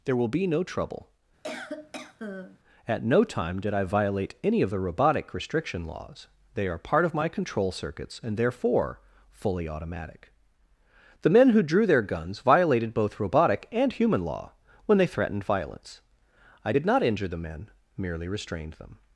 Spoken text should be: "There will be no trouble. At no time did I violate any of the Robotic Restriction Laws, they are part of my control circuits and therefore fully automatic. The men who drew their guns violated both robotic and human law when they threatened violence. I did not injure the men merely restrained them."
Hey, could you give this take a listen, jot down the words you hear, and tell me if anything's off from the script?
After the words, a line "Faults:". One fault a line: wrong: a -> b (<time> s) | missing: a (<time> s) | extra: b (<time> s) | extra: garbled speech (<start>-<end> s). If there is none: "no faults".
"There will be no trouble. At no time did I violate any of the Robotic Restriction Laws, they are part of my control circuits and therefore fully automatic. The men who drew their guns violated both robotic and human law when they threatened violence. I did not injure the men merely restrained them."
Faults:
no faults